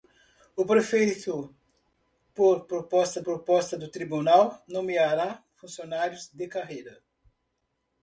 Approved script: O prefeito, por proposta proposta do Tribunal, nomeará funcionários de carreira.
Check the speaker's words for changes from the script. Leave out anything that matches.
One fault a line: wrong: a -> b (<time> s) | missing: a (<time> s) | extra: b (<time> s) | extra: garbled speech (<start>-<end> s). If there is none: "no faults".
no faults